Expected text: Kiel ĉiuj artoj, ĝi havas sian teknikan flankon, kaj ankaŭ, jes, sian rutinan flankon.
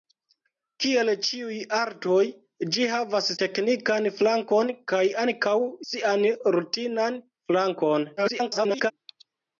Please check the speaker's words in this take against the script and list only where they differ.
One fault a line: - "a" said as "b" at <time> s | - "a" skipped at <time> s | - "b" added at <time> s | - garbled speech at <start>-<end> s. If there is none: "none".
- "sian" skipped at 3.3 s
- "jes" skipped at 5.6 s
- garbled speech at 8.2-8.9 s